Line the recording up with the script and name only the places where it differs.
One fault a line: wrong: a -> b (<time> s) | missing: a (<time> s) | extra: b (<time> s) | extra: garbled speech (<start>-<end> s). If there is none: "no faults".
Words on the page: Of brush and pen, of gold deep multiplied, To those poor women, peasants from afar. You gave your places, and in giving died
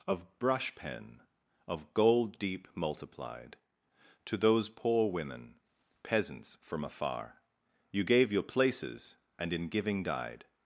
missing: and (0.7 s)